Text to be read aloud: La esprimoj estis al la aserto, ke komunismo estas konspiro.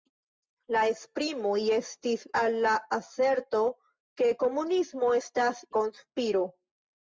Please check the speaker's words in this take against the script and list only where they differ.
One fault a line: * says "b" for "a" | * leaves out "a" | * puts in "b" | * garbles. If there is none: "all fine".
all fine